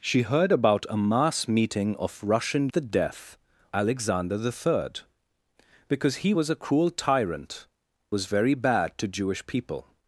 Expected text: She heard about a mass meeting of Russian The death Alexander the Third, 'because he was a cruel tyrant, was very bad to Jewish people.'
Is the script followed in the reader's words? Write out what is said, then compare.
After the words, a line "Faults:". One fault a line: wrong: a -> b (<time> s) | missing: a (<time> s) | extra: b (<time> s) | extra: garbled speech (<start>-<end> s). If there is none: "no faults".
She heard about a mass meeting of Russian The death Alexander the Third, 'because he was a cruel tyrant, was very bad to Jewish people.'
Faults:
no faults